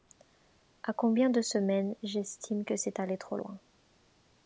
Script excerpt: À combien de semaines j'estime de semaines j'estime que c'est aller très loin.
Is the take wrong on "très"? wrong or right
wrong